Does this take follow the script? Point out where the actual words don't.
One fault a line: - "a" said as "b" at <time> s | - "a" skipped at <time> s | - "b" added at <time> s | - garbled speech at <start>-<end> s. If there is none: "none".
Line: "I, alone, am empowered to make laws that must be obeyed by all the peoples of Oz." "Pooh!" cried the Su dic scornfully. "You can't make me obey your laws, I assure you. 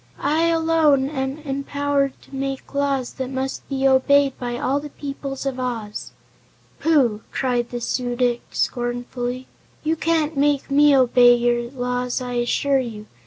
none